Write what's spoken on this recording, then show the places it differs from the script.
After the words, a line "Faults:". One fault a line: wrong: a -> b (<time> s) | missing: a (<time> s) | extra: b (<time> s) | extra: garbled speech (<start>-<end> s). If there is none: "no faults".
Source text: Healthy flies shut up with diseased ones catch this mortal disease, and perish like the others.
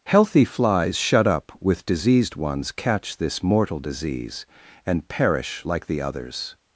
Healthy flies shut up with diseased ones catch this mortal disease, and perish like the others.
Faults:
no faults